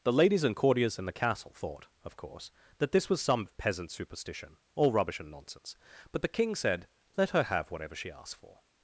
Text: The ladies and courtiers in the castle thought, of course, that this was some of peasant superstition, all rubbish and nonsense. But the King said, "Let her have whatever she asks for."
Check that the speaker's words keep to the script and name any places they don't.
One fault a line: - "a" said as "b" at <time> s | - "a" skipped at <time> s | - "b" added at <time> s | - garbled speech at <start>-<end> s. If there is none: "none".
none